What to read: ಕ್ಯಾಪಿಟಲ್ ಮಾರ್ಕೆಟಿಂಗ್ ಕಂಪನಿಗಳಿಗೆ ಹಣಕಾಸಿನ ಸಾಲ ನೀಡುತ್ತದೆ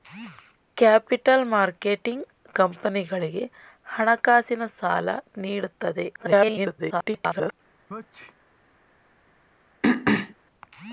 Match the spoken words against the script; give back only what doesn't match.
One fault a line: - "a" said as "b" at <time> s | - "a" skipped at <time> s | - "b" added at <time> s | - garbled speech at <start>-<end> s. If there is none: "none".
- garbled speech at 6.1-7.5 s